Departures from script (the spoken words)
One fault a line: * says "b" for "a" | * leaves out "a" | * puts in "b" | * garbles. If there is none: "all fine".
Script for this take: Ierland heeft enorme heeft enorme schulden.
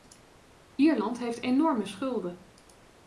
* leaves out "heeft enorme"